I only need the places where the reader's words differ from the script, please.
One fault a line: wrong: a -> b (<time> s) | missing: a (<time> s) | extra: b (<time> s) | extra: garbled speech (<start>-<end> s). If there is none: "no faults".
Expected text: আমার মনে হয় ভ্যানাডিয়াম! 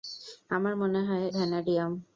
no faults